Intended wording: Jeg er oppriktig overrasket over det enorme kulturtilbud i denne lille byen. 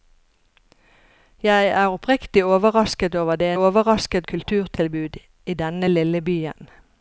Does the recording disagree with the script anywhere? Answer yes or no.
yes